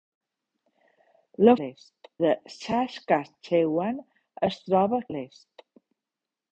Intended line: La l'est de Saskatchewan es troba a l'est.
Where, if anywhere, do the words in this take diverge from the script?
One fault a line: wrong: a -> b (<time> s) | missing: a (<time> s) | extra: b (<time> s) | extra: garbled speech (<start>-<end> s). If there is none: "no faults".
no faults